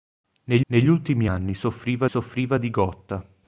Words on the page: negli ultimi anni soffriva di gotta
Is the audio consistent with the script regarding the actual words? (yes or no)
no